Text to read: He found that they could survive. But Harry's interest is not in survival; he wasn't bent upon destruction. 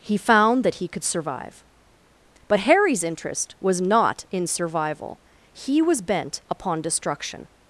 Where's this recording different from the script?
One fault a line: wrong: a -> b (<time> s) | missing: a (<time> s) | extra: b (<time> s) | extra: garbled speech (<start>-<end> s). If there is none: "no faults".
wrong: they -> he (0.8 s)
wrong: is -> was (3.6 s)
wrong: wasn't -> was (5.8 s)